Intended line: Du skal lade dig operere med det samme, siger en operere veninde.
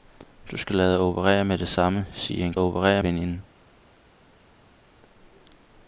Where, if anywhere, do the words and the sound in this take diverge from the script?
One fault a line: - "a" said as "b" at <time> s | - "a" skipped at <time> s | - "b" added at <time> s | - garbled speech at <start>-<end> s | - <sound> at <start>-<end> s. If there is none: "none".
none